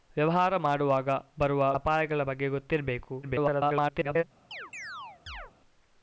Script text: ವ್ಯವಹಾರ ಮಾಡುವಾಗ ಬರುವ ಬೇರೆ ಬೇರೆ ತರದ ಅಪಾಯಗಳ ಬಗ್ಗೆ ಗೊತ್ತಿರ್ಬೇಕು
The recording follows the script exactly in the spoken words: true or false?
false